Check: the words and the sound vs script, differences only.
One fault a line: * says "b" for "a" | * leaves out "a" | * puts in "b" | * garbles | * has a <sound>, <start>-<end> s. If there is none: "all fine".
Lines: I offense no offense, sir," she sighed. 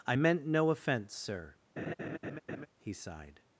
* says "meant" for "offense"
* has a laugh, 1.8-2.7 s
* says "he" for "she"